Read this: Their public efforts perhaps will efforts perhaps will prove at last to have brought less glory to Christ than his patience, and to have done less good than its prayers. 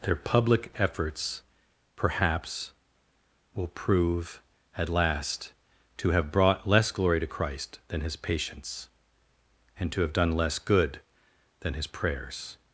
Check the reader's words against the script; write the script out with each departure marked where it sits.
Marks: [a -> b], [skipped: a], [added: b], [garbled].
Their public efforts perhaps will [skipped: efforts perhaps will] prove at last to have brought less glory to Christ than his patience, and to have done less good than [its -> his] prayers.